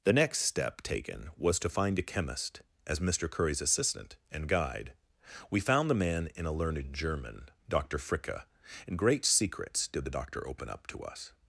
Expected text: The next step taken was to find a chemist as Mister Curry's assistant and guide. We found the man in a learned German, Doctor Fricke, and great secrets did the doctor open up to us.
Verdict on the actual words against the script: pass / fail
pass